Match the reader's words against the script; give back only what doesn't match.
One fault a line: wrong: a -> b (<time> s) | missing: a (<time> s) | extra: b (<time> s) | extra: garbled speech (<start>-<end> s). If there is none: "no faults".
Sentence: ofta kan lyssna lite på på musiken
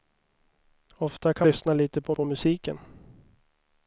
no faults